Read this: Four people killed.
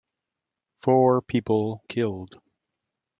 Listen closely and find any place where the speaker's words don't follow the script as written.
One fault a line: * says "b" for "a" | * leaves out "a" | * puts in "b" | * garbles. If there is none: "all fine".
all fine